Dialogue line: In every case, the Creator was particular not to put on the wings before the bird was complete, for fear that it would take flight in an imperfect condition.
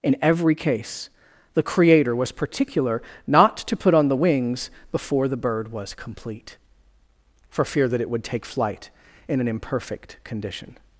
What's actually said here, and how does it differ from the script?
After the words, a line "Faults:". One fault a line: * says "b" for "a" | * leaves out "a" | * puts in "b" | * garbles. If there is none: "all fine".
In every case, the Creator was particular not to put on the wings before the bird was complete, for fear that it would take flight in an imperfect condition.
Faults:
all fine